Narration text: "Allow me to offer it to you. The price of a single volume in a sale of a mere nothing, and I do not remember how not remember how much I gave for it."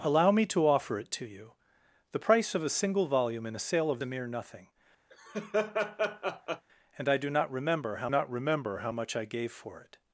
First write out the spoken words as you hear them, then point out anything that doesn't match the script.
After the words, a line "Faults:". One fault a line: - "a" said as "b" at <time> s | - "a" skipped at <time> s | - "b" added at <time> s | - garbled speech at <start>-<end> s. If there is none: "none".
"Allow me to offer it to you. The price of a single volume in a sale of a mere nothing, and I do not remember how not remember how much I gave for it."
Faults:
none